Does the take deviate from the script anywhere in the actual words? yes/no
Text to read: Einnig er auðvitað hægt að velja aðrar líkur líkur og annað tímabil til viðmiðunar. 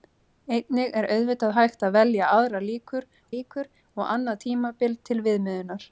no